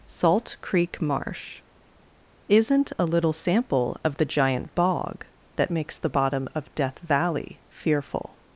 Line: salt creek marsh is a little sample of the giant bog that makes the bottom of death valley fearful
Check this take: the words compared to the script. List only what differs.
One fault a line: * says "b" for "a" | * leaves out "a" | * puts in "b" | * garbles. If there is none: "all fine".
* says "isn't" for "is"